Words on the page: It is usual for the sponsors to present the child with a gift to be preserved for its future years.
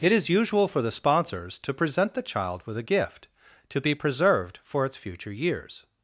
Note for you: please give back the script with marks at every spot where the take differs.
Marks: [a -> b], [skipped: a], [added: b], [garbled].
It is usual for the sponsors to present the child with a gift to be preserved for its future years.